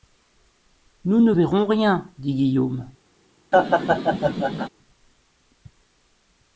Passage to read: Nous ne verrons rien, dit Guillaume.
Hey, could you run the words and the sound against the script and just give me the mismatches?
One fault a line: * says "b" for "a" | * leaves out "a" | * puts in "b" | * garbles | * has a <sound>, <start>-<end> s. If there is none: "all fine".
* has a laugh, 3.5-4.7 s